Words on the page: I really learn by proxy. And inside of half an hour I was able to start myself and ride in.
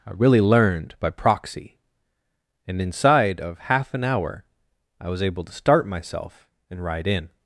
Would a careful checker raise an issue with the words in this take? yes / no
yes